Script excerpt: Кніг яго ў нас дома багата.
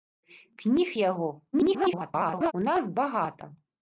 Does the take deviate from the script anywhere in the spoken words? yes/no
yes